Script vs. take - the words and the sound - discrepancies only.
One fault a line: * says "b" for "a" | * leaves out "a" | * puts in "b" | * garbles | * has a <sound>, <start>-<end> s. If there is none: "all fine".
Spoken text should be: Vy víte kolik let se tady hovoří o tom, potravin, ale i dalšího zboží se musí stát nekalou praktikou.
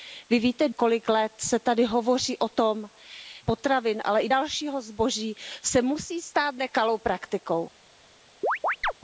* has a chirp, 8.4-8.9 s